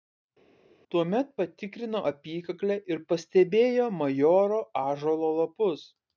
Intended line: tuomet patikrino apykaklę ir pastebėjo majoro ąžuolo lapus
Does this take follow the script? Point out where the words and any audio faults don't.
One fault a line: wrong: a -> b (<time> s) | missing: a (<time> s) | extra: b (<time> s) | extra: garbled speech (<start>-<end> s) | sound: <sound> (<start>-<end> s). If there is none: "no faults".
no faults